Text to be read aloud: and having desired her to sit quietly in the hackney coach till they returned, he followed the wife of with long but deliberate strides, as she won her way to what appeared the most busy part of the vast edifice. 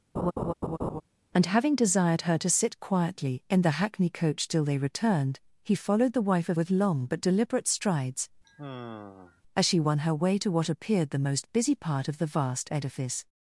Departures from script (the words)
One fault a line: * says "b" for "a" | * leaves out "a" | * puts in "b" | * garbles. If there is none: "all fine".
all fine